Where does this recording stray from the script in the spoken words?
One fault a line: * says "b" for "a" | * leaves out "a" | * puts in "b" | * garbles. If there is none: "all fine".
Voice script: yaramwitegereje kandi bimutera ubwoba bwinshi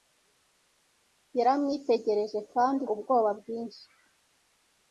* leaves out "bimutera"